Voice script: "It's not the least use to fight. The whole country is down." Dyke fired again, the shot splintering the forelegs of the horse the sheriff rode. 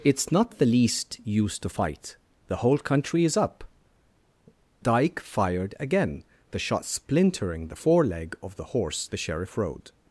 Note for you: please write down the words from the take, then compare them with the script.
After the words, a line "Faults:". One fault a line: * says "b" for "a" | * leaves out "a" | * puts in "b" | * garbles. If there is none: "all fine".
"It's not the least use to fight. The whole country is up." Dyke fired again, the shot splintering the foreleg of the horse the sheriff rode.
Faults:
* says "up" for "down"
* says "foreleg" for "forelegs"